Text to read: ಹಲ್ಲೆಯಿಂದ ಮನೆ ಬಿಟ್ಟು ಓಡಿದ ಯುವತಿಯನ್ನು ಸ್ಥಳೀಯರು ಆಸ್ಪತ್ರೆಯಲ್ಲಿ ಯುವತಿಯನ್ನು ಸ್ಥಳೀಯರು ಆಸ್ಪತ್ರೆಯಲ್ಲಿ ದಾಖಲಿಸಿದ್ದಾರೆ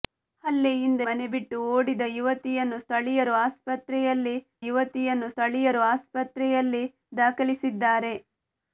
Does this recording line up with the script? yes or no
yes